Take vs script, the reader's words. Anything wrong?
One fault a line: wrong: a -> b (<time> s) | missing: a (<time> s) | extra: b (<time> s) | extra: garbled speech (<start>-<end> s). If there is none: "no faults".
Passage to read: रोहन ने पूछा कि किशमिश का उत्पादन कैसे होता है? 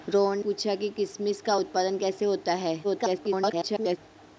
missing: ने (0.4 s)
extra: garbled speech (2.8-4.0 s)